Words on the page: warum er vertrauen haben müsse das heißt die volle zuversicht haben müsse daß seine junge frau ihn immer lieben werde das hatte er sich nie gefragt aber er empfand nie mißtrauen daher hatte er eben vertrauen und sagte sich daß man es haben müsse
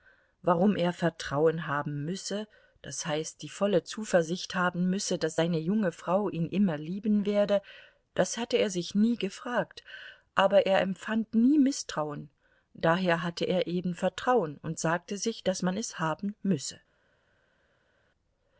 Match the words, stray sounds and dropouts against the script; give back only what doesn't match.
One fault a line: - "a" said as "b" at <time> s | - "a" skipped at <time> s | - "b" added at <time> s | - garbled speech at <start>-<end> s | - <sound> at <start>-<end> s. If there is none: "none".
none